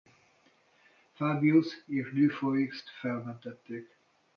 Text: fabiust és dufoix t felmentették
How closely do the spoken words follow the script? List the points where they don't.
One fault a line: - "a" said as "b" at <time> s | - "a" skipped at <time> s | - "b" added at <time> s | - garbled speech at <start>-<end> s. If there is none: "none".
none